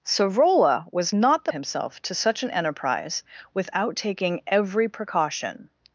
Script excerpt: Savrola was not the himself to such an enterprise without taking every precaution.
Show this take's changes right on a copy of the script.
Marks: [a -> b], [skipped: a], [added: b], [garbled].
Savrola was not the himself to such an enterprise without taking every precaution.